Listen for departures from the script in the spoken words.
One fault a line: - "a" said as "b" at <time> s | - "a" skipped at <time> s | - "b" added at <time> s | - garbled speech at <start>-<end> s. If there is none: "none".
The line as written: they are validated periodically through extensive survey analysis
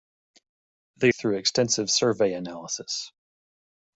- "are validated periodically" skipped at 1.1 s